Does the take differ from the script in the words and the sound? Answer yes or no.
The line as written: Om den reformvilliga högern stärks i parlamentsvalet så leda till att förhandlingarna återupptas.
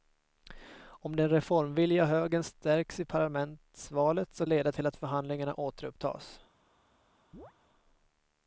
yes